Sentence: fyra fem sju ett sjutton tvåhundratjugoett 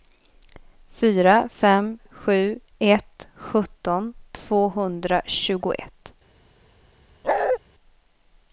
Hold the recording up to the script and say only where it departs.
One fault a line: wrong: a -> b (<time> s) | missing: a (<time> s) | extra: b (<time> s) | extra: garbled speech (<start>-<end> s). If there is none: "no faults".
no faults